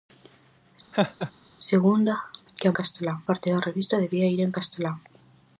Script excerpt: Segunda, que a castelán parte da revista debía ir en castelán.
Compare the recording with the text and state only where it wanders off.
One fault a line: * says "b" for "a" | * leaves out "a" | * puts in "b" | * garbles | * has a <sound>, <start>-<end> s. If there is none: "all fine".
* has a laugh, 0.9-1.3 s